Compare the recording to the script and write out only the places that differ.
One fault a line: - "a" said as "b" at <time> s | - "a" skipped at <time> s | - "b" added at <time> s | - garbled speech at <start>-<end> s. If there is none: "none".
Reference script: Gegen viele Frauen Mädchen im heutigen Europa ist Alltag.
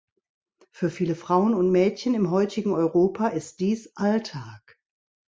- "Gegen" said as "Für" at 0.7 s
- "und" added at 1.5 s
- "dies" added at 3.6 s